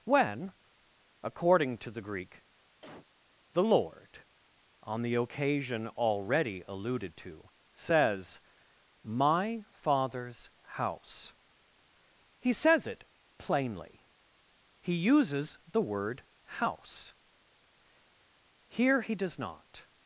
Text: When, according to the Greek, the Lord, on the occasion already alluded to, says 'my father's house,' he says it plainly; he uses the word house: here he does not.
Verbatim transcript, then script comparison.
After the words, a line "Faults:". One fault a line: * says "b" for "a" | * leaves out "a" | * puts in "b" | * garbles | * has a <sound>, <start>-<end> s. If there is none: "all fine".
When, according to the Greek, the Lord, on the occasion already alluded to, says 'my father's house,' he says it plainly; he uses the word house: here he does not.
Faults:
* has a cough, 2.8-3.1 s